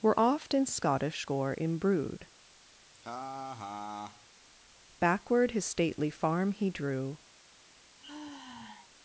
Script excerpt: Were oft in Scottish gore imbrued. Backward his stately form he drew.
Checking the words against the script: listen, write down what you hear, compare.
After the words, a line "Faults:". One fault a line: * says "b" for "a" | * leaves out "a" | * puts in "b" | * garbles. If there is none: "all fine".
Were oft in Scottish gore imbrued. Backward his stately farm he drew.
Faults:
* says "farm" for "form"